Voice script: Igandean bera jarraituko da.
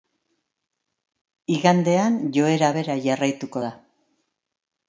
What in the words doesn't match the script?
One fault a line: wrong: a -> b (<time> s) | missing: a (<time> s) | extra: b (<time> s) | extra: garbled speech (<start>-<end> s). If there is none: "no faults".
extra: joera (2.4 s)